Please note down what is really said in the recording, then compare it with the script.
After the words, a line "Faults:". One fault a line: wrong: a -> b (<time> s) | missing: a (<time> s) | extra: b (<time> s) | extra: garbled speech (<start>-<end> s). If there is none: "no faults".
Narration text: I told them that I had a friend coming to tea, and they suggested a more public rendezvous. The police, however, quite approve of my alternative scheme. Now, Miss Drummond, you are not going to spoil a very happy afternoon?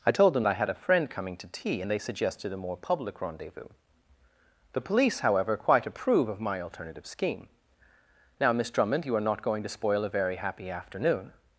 I told them I had a friend coming to tea, and they suggested a more public rendezvous. The police, however, quite approve of my alternative scheme. Now, Miss Drummond, you are not going to spoil a very happy afternoon?
Faults:
missing: that (0.5 s)